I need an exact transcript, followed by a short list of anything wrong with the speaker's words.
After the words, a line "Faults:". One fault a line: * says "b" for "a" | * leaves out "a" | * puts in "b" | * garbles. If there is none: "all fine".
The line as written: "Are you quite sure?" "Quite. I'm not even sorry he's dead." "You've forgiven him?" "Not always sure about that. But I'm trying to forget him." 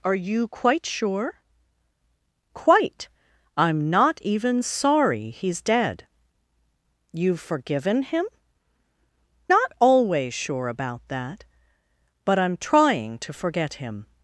"Are you quite sure?" "Quite. I'm not even sorry he's dead." "You've forgiven him?" "Not always sure about that. But I'm trying to forget him."
Faults:
all fine